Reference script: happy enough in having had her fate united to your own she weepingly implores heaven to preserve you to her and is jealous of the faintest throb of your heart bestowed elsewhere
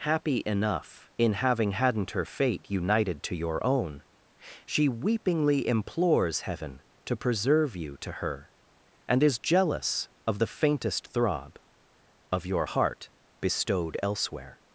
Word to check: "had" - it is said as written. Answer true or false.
false